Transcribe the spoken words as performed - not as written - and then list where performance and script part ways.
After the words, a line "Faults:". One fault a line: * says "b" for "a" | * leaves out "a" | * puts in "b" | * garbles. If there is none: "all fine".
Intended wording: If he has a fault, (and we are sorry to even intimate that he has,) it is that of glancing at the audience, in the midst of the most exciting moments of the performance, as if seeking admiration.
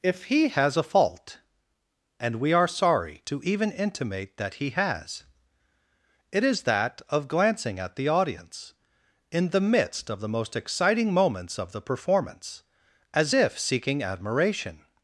If he has a fault, (and we are sorry to even intimate that he has,) it is that of glancing at the audience, in the midst of the most exciting moments of the performance, as if seeking admiration.
Faults:
all fine